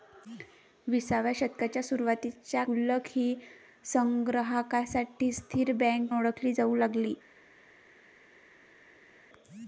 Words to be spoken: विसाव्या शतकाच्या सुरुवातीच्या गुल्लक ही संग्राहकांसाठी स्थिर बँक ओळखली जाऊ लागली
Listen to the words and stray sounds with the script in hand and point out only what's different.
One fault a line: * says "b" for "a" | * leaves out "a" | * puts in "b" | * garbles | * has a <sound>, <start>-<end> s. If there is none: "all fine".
all fine